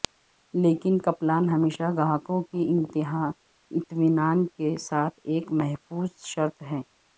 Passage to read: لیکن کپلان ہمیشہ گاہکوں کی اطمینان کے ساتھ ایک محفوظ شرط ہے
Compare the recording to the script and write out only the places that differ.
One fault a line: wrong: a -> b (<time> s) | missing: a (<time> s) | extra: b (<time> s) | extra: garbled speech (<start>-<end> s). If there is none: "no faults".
no faults